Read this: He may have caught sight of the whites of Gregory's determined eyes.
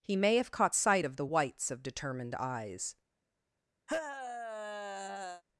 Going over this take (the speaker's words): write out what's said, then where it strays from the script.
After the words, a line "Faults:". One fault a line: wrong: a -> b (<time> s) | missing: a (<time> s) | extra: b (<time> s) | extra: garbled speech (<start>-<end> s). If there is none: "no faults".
He may have caught sight of the whites of determined eyes.
Faults:
missing: Gregory's (1.8 s)